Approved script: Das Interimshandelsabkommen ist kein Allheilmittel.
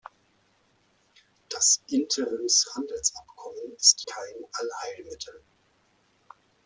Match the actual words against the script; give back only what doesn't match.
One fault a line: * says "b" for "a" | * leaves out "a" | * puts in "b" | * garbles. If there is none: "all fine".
all fine